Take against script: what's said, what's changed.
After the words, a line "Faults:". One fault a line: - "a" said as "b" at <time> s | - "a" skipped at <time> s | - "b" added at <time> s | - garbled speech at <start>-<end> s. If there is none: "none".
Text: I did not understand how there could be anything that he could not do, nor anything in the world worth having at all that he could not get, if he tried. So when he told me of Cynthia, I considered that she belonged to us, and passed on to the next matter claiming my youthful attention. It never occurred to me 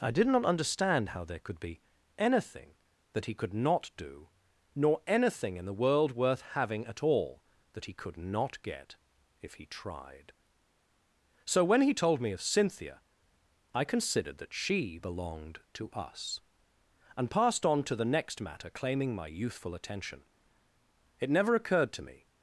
I did not understand how there could be anything that he could not do, nor anything in the world worth having at all that he could not get, if he tried. So when he told me of Cynthia, I considered that she belonged to us, and passed on to the next matter claiming my youthful attention. It never occurred to me
Faults:
none